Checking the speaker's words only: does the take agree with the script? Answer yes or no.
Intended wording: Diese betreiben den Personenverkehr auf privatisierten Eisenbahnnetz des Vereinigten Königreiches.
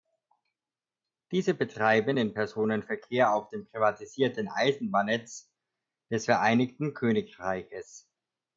no